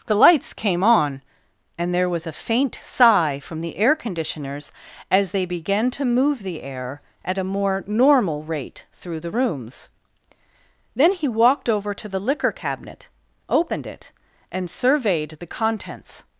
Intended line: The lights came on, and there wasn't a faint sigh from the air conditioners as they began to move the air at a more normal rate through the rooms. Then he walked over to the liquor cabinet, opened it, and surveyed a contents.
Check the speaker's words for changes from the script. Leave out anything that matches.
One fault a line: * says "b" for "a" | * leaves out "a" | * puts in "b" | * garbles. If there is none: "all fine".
* says "was" for "wasn't"
* says "the" for "a"